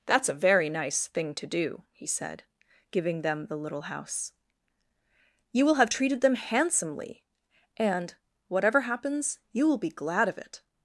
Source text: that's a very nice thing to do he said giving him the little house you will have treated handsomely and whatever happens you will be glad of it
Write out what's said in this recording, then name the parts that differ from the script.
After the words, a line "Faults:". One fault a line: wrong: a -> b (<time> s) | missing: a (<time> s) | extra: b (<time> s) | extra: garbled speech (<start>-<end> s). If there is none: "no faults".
that's a very nice thing to do he said giving them the little house you will have treated them handsomely and whatever happens you will be glad of it
Faults:
wrong: him -> them (3.2 s)
extra: them (6.2 s)